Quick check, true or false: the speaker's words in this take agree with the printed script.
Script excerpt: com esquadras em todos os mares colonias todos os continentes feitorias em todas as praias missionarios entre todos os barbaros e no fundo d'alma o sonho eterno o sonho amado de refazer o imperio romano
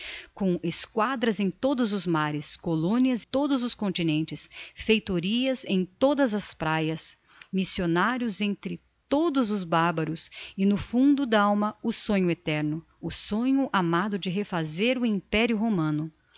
true